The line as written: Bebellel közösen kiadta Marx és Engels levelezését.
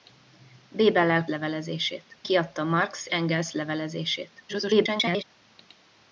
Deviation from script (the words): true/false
true